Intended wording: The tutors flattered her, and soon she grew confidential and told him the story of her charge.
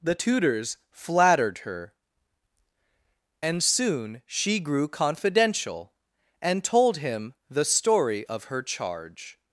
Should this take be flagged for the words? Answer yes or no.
no